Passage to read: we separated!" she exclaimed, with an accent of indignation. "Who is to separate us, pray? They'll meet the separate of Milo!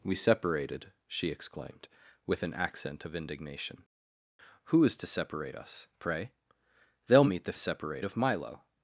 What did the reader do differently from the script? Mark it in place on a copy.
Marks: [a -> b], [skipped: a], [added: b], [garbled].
we separated!" she exclaimed, with an accent of indignation. "Who is to separate us, pray? They'll meet the separate of Milo!